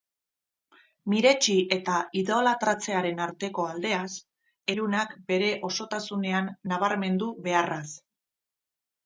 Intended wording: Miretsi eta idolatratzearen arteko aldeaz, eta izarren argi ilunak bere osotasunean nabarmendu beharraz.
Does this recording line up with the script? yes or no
no